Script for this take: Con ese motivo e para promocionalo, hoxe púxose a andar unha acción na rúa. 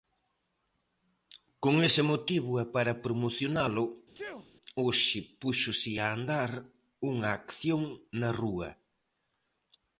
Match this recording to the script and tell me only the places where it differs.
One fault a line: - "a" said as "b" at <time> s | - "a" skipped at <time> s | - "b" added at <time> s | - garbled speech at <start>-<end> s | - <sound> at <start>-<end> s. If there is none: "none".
- sneeze at 4.1-4.5 s